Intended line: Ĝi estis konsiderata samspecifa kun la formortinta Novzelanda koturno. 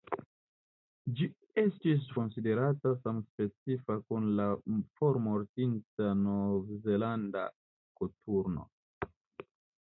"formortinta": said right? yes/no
yes